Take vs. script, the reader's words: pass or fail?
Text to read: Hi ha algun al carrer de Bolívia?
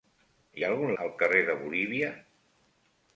pass